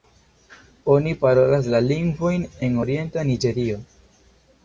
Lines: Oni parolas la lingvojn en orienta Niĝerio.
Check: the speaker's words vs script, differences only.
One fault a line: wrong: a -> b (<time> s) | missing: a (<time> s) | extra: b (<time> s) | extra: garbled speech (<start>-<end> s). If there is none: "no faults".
no faults